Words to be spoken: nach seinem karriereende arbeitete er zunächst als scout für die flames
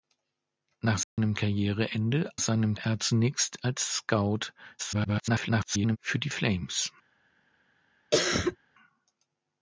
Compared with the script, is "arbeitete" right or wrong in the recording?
wrong